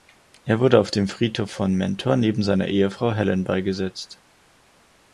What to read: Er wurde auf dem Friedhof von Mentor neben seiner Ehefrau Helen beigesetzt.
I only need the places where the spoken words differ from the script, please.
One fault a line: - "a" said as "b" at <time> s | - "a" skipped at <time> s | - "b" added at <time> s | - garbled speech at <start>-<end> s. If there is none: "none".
none